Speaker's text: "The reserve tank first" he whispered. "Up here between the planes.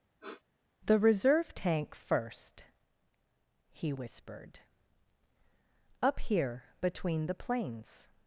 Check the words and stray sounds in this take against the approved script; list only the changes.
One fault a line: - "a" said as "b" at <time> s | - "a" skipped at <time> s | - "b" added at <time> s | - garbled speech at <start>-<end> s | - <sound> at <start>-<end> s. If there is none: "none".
- sniff at 0.2-0.4 s